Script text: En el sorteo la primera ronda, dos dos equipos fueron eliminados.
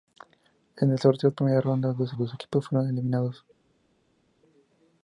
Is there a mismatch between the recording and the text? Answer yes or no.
no